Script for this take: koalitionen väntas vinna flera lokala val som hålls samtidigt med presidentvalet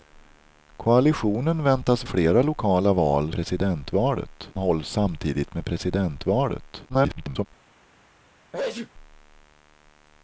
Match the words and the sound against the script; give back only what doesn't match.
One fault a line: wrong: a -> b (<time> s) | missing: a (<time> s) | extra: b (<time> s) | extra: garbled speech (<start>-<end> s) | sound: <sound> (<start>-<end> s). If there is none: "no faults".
missing: vinna (2.0 s)
wrong: som -> presidentvalet (3.3 s)
extra: garbled speech (6.9-7.5 s)
sound: sneeze (8.5-8.9 s)